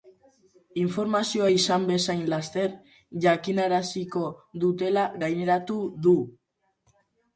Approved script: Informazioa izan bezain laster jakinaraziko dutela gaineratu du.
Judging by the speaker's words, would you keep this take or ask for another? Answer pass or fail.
pass